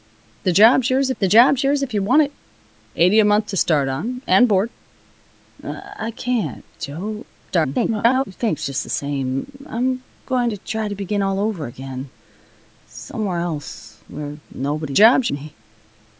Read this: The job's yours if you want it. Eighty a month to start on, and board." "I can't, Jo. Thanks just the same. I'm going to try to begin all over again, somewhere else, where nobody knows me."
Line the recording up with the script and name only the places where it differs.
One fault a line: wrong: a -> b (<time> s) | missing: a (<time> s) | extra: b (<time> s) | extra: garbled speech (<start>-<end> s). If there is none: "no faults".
extra: the job's yours (1.2 s)
extra: garbled speech (7.5-8.2 s)
wrong: knows -> job's (14.9 s)